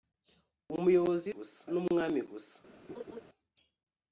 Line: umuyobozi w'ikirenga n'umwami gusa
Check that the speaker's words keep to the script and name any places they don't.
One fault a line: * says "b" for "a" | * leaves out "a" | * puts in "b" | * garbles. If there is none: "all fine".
* says "gusa" for "w'ikirenga"